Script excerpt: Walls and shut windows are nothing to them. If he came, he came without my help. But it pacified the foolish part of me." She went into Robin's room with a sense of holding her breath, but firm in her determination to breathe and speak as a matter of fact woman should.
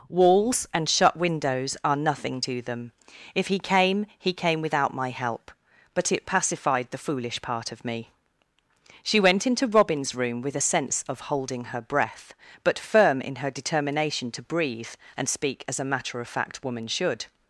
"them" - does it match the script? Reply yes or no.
yes